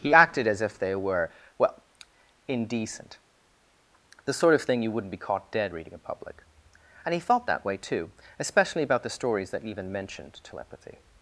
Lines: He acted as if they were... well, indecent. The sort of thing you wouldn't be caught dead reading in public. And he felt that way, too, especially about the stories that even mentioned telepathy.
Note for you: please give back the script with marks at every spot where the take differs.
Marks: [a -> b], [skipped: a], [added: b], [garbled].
He acted as if they were... well, indecent. The sort of thing you wouldn't be caught dead reading in public. And he felt that way, too, especially about the stories that even mentioned telepathy.